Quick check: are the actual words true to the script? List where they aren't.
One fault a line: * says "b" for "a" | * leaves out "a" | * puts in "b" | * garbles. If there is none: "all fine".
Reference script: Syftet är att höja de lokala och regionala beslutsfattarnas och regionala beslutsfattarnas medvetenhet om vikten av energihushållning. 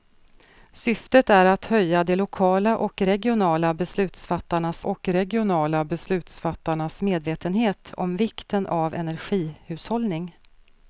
all fine